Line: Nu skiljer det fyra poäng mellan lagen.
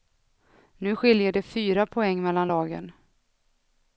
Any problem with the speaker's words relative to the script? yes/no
no